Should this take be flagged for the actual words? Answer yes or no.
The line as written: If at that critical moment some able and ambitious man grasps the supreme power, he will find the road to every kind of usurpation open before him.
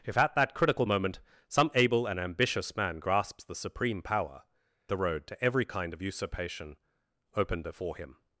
yes